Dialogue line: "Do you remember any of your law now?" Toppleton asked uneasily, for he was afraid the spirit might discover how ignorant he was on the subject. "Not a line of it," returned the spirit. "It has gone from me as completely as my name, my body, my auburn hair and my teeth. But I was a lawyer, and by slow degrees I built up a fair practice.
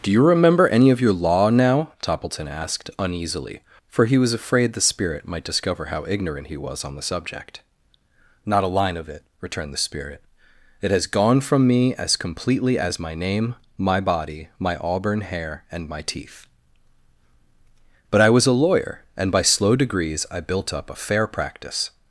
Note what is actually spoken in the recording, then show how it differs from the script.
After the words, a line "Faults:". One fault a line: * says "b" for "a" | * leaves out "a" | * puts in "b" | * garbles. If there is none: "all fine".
"Do you remember any of your law now?" Toppleton asked uneasily, for he was afraid the spirit might discover how ignorant he was on the subject. "Not a line of it," returned the spirit. "It has gone from me as completely as my name, my body, my auburn hair and my teeth. But I was a lawyer, and by slow degrees I built up a fair practice.
Faults:
all fine